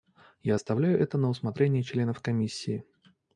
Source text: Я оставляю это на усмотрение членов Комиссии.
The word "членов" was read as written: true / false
true